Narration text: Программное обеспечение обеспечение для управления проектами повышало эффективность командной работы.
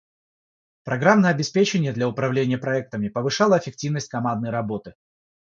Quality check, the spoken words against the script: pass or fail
fail